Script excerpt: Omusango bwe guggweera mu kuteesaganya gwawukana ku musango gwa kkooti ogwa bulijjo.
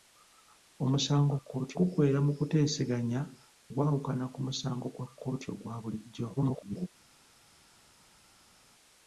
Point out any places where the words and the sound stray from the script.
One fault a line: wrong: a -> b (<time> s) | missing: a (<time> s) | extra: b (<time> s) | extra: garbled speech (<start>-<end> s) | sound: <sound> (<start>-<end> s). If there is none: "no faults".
wrong: bwe -> kkooti (1.4 s)
extra: garbled speech (6.4-6.9 s)